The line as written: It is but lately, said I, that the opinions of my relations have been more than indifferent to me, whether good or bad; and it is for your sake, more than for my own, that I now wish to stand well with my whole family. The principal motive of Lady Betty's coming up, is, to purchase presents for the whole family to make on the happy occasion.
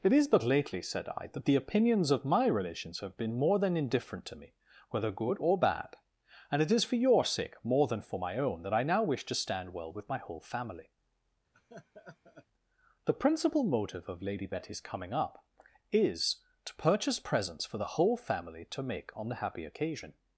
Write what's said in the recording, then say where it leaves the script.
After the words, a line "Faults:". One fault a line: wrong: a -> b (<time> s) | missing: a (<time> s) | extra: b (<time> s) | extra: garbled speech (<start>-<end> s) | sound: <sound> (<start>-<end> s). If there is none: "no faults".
It is but lately, said I, that the opinions of my relations have been more than indifferent to me, whether good or bad; and it is for your sake, more than for my own, that I now wish to stand well with my whole family. The principal motive of Lady Betty's coming up, is, to purchase presents for the whole family to make on the happy occasion.
Faults:
sound: laugh (11.5-12.5 s)